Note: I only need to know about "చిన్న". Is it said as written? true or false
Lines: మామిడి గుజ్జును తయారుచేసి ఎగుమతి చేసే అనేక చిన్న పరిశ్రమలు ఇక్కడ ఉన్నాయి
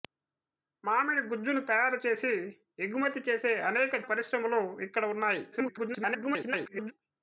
false